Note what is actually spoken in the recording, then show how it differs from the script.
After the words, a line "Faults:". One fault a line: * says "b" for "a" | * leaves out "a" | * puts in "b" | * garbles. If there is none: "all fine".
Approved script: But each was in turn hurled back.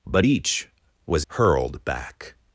But each was hurled back.
Faults:
* leaves out "in turn"